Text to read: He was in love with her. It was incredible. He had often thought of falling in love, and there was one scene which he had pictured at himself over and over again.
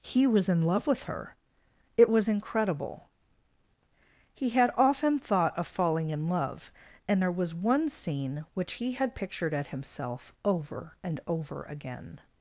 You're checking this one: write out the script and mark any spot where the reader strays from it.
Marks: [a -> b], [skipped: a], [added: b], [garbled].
He was in love with her. It was incredible. He had often thought of falling in love, and there was one scene which he had pictured at himself over and over again.